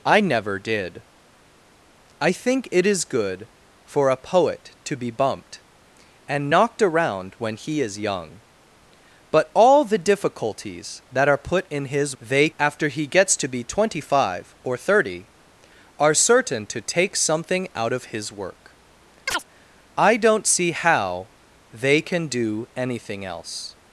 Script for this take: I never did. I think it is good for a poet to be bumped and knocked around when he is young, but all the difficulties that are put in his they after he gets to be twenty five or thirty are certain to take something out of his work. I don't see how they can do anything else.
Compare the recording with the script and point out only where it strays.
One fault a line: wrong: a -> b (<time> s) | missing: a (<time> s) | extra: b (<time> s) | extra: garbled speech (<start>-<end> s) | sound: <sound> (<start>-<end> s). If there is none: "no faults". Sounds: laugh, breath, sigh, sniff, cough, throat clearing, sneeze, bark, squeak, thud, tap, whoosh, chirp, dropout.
sound: chirp (19.3-19.4 s)